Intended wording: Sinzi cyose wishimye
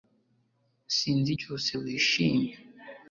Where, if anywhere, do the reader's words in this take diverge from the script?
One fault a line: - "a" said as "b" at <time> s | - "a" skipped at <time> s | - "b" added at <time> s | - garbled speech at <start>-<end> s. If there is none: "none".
none